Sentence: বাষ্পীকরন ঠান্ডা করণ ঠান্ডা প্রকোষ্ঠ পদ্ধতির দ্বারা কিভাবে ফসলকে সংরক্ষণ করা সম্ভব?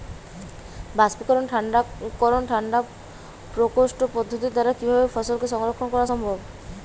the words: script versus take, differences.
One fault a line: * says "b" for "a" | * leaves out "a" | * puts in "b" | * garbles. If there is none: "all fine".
all fine